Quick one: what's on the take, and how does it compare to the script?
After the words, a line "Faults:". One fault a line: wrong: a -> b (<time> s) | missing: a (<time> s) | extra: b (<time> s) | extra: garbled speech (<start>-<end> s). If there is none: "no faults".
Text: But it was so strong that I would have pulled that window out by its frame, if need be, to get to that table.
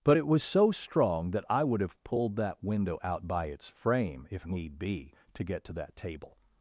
But it was so strong that I would have pulled that window out by its frame, if need be, to get to that table.
Faults:
no faults